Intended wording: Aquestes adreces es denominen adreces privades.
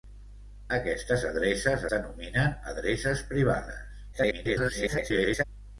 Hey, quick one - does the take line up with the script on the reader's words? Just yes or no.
no